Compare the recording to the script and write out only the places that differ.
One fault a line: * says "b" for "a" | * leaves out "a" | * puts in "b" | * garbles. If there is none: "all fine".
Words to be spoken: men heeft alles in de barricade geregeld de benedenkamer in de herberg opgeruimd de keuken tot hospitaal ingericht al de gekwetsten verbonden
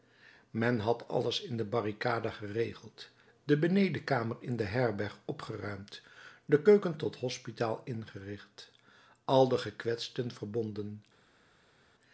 * says "had" for "heeft"